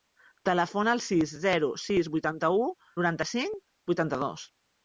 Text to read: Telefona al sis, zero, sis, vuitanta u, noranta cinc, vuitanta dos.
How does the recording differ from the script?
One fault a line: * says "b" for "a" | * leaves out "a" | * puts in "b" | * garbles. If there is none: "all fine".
all fine